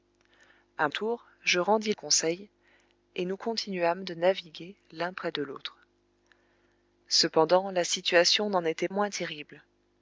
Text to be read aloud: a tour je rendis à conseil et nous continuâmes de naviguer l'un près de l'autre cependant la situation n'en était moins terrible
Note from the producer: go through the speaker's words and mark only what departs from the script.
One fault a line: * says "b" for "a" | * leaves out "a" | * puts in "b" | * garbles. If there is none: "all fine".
all fine